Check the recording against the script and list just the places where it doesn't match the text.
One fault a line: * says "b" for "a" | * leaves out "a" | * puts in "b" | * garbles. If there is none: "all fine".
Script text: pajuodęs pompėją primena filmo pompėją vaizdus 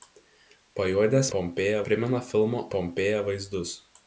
all fine